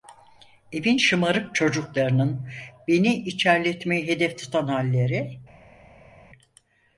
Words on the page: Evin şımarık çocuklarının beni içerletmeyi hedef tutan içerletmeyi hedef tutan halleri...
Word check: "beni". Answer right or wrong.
right